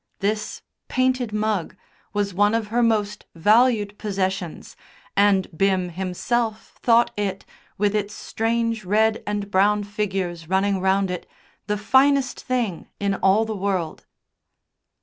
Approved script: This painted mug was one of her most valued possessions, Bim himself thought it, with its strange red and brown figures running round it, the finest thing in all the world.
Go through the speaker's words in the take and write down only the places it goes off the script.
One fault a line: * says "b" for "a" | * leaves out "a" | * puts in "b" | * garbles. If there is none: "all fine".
* puts in "and"